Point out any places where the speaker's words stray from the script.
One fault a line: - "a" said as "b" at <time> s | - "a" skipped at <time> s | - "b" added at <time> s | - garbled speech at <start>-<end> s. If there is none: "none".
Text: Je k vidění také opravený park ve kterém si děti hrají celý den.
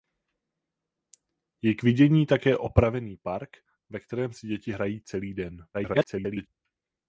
- garbled speech at 5.7-6.5 s